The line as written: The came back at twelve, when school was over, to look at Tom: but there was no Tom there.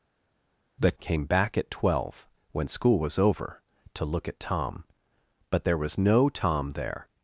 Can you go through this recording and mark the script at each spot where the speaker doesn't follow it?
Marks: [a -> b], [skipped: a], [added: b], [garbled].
The came back at twelve, when school was over, to look at Tom: but there was no Tom there.